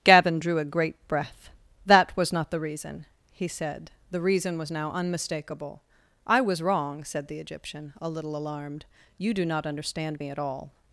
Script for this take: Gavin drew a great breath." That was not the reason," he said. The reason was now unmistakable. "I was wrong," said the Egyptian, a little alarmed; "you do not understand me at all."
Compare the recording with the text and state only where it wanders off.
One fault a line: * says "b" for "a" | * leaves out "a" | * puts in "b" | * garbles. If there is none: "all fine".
all fine